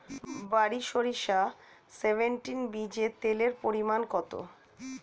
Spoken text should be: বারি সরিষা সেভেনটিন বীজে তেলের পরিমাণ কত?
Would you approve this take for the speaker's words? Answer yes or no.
yes